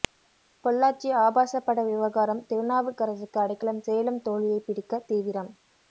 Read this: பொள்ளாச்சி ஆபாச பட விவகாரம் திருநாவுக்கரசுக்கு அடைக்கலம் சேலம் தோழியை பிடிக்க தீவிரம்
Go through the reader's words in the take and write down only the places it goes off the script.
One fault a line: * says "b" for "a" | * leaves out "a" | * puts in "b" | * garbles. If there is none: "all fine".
all fine